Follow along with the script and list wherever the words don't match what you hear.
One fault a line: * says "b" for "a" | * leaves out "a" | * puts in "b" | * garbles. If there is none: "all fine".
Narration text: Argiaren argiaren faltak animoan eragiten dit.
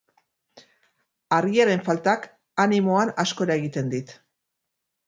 * leaves out "argiaren"
* puts in "asko"